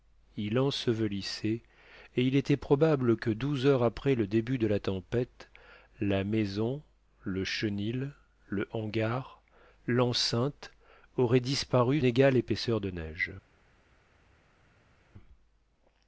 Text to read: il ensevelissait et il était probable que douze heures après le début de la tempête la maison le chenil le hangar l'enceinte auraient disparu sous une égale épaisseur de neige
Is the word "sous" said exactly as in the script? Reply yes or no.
no